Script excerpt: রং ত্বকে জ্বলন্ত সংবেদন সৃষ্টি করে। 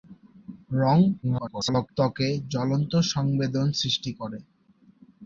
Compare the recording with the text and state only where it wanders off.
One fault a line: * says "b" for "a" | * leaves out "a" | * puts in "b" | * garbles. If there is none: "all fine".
* garbles